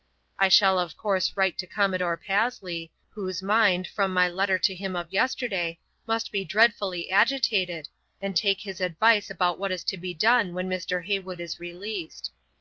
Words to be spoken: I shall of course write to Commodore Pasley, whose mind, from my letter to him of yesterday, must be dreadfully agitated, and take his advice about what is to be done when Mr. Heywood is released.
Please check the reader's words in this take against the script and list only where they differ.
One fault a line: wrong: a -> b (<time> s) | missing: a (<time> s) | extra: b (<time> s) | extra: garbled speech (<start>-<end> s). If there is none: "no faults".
no faults